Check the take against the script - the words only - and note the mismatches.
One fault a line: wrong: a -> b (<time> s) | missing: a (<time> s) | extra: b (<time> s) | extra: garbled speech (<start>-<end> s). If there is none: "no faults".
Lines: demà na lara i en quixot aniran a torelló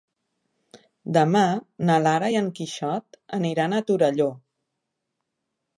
no faults